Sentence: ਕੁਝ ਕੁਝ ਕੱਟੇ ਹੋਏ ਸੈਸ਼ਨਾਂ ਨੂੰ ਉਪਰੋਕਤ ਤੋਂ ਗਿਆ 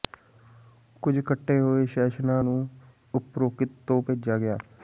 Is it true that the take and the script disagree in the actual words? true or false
true